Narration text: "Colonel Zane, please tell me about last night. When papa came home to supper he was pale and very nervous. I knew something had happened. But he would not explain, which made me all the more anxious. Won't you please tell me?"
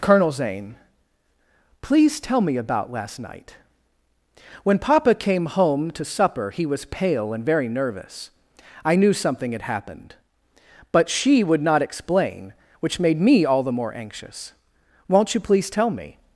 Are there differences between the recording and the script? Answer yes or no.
yes